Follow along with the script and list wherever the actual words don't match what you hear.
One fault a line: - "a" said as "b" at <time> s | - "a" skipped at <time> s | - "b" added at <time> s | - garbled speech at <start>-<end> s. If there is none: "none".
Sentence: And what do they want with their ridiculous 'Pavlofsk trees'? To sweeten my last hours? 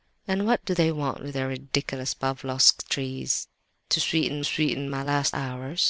- "sweeten" added at 4.4 s